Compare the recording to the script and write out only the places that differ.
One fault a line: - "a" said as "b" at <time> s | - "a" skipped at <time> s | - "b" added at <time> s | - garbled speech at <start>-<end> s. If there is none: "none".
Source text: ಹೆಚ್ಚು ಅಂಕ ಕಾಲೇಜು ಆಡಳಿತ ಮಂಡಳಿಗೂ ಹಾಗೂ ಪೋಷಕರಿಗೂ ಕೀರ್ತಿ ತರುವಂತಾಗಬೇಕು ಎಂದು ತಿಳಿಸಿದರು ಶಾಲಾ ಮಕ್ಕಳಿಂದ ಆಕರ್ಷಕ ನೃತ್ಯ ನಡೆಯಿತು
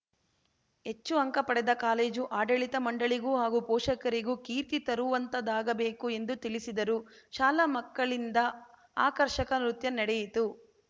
- "ಪಡೆದ" added at 1.5 s